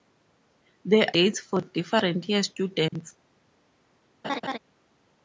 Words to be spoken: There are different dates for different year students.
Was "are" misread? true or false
true